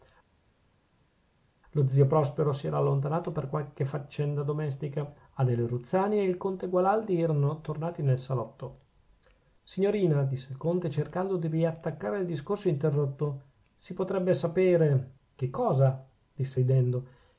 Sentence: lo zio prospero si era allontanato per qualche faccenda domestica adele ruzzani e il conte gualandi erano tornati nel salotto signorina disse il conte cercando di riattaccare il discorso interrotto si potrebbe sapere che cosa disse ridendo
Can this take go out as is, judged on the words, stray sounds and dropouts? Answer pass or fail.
pass